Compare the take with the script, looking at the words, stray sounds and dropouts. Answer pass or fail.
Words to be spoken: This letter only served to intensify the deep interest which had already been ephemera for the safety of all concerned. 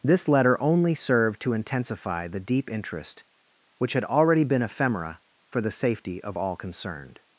pass